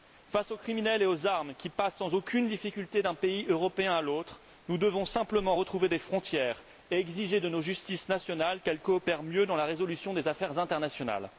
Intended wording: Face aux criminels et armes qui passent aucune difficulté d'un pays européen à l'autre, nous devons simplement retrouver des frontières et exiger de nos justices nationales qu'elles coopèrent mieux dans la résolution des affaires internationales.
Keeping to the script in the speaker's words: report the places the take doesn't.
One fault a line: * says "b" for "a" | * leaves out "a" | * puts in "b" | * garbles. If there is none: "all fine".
* puts in "aux"
* puts in "sans"